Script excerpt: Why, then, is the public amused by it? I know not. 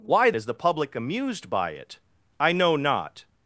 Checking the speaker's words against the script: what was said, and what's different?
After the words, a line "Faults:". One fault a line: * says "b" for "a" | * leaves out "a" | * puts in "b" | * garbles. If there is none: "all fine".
Why, is the public amused by it? I know not.
Faults:
* leaves out "then"